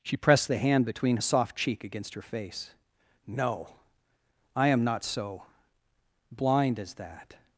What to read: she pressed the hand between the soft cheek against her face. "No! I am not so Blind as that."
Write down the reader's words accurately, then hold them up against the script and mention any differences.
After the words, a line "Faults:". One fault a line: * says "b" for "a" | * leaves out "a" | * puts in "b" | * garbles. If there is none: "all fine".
she pressed the hand between the soft cheek against her face. "No! I am not so Blind as that."
Faults:
all fine